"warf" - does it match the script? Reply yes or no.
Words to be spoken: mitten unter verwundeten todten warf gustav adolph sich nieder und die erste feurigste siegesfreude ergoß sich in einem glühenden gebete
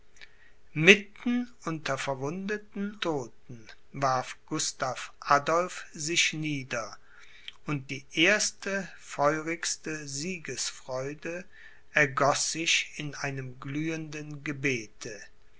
yes